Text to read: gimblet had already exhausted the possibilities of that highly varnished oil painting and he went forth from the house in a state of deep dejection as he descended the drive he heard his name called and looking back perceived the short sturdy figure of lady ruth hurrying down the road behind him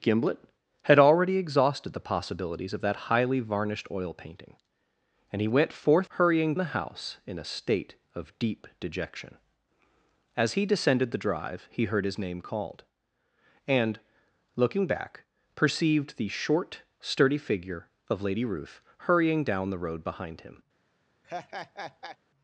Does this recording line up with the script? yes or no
no